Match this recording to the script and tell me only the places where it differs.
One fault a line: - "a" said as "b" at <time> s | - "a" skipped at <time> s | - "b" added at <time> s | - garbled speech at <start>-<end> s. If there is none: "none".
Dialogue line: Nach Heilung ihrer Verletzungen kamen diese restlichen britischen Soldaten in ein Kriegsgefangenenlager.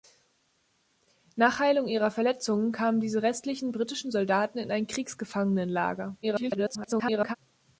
- garbled speech at 6.2-7.4 s